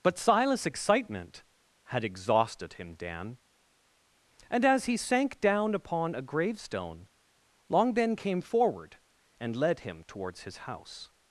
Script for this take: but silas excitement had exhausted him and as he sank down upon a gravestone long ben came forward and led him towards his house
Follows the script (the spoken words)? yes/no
no